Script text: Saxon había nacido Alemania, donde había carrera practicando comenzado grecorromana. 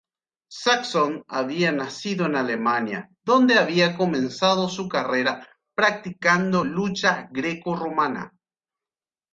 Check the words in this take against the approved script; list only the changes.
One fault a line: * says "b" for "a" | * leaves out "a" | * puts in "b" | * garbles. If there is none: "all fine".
* puts in "en"
* puts in "comenzado su"
* says "lucha" for "comenzado"